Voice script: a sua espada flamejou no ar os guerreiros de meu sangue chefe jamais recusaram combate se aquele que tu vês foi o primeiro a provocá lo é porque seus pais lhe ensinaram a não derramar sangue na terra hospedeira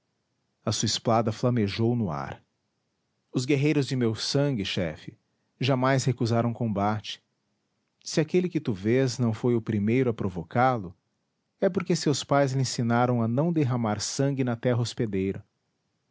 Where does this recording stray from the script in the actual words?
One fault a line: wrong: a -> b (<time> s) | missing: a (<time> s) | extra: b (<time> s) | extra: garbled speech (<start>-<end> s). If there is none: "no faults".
extra: não (9.2 s)